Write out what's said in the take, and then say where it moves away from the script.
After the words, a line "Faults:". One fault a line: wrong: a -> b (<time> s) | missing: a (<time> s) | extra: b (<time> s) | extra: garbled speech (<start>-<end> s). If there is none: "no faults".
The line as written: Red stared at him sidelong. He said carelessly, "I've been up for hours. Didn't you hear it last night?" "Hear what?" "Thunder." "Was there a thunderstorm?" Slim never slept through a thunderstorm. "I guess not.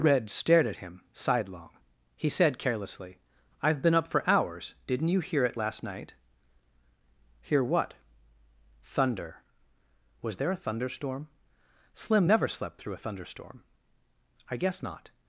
Red stared at him sidelong. He said carelessly, "I've been up for hours. Didn't you hear it last night?" "Hear what?" "Thunder." "Was there a thunderstorm?" Slim never slept through a thunderstorm. "I guess not.
Faults:
no faults